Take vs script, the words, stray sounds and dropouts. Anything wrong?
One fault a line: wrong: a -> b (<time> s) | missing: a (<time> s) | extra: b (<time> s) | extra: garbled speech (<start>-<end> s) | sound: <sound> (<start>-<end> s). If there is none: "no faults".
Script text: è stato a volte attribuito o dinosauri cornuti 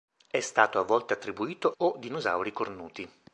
no faults